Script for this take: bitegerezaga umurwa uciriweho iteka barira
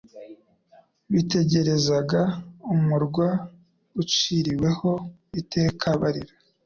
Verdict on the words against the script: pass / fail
pass